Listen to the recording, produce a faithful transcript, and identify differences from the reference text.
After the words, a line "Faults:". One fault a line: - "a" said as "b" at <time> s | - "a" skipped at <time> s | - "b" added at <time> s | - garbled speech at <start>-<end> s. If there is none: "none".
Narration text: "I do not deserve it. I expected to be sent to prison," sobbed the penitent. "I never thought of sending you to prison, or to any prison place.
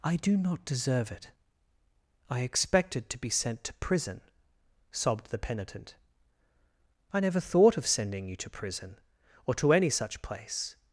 "I do not deserve it. I expected to be sent to prison," sobbed the penitent. "I never thought of sending you to prison, or to any such place.
Faults:
- "prison" said as "such" at 9.9 s